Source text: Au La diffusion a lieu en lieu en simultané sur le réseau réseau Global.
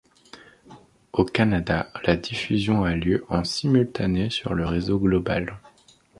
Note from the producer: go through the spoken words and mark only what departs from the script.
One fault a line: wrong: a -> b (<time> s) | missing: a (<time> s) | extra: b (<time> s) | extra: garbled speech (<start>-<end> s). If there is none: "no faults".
extra: Canada (1.2 s)
missing: lieu en (3.4 s)
missing: réseau (5.0 s)